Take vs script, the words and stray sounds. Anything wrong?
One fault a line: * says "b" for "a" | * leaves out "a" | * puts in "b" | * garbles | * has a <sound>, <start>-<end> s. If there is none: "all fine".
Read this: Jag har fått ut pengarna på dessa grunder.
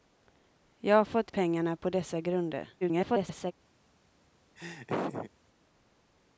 * leaves out "ut"
* garbles
* has a laugh, 4.6-5.3 s